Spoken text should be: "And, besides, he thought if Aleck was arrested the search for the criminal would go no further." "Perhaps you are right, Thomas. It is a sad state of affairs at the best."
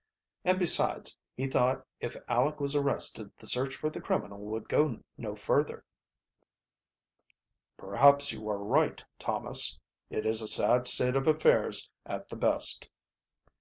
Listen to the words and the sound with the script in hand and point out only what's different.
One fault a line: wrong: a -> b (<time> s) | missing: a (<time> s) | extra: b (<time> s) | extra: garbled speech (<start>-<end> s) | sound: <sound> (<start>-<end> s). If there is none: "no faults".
no faults